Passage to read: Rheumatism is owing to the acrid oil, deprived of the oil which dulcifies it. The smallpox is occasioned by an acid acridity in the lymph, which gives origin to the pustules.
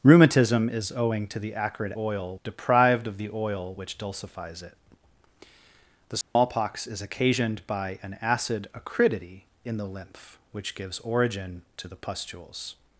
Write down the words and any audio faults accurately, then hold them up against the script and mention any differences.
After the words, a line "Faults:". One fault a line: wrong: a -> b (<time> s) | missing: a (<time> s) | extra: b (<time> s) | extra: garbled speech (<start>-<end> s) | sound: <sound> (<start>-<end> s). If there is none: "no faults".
Rheumatism is owing to the acrid oil, deprived of the oil which dulcifies it. The smallpox is occasioned by an acid acridity in the lymph, which gives origin to the pustules.
Faults:
sound: dropout (6.2-6.4 s)